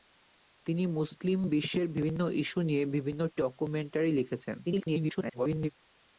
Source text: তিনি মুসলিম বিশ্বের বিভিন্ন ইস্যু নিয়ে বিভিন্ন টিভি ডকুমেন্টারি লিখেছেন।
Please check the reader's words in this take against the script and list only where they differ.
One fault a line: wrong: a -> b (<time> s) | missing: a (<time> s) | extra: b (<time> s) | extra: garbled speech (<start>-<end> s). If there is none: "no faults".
missing: টিভি (3.2 s)
extra: garbled speech (4.6-5.7 s)